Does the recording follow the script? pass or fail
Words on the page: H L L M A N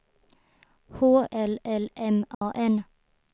pass